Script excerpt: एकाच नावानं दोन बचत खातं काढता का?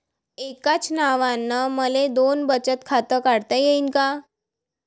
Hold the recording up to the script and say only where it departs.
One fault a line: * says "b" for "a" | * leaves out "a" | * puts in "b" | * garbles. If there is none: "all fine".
* puts in "मले"
* puts in "येईन"